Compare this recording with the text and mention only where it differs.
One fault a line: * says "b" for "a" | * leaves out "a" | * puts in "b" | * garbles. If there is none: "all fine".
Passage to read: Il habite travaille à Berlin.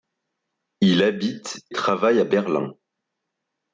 all fine